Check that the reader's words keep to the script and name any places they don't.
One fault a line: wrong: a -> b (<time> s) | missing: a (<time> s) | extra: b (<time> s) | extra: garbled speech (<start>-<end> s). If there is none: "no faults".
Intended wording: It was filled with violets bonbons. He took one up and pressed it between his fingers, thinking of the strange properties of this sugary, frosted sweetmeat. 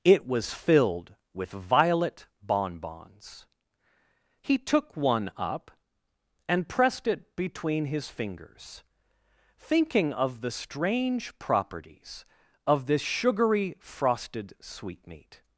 wrong: violets -> violet (1.5 s)